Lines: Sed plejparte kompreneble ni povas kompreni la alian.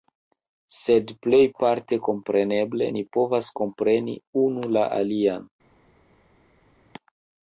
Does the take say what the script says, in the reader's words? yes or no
no